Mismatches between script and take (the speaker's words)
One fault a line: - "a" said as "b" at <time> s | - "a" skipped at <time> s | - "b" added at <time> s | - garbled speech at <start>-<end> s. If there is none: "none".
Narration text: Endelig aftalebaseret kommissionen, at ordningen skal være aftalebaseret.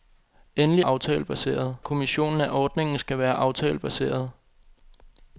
none